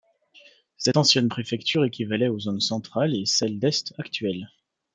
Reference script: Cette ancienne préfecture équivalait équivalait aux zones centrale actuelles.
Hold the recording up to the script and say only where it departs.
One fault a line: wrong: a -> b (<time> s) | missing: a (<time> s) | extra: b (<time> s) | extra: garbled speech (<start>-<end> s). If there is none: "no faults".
missing: équivalait (2.3 s)
extra: et celle d'est (3.1 s)